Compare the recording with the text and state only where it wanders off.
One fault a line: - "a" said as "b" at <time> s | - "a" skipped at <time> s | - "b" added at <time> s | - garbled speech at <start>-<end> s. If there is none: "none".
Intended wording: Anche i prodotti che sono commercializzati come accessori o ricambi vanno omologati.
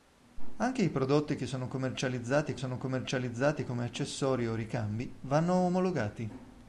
- "sono commercializzati" added at 2.5 s